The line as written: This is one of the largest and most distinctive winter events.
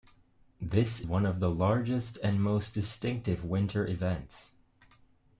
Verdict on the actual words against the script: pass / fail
fail